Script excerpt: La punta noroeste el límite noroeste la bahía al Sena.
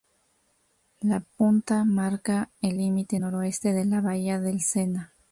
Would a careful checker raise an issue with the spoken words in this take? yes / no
yes